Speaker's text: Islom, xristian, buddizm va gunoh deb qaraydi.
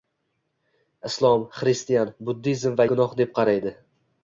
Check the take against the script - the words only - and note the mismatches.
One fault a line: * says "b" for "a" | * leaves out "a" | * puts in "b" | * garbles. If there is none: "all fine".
all fine